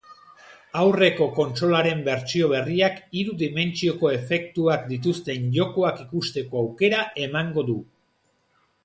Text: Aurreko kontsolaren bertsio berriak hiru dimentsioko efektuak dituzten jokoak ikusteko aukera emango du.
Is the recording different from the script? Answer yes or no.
no